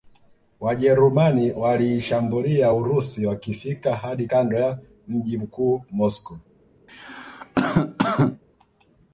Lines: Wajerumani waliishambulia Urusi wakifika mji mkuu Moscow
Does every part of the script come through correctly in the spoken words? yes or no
no